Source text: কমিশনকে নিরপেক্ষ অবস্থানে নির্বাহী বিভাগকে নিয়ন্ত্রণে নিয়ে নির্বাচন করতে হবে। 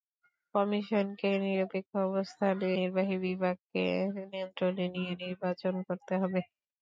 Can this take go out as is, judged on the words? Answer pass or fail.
pass